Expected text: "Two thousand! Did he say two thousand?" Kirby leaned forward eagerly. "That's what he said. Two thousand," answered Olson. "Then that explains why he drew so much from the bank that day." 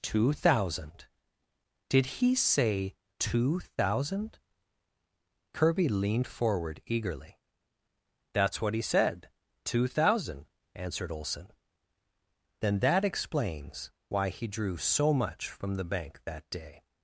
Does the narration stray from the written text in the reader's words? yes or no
no